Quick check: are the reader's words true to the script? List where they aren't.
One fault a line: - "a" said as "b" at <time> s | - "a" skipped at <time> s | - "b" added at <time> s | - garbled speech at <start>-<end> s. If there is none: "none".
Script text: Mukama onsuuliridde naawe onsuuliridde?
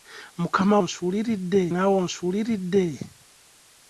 none